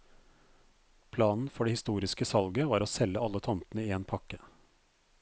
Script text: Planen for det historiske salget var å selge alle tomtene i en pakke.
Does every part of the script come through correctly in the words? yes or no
yes